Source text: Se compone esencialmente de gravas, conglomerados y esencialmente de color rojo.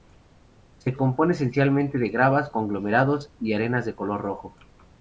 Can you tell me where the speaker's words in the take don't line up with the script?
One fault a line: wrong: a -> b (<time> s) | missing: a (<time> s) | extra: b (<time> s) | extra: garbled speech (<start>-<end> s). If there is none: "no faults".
wrong: esencialmente -> arenas (3.5 s)